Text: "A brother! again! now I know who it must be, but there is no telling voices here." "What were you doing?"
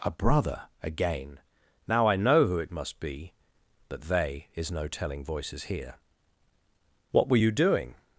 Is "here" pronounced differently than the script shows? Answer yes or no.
no